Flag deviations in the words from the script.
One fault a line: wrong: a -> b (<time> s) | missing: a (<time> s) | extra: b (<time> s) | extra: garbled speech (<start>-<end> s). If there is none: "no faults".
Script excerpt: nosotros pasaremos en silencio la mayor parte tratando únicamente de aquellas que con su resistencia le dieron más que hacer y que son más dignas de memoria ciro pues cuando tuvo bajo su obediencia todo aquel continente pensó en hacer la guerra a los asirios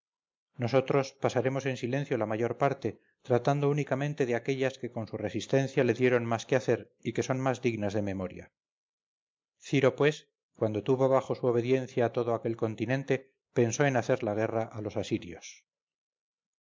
no faults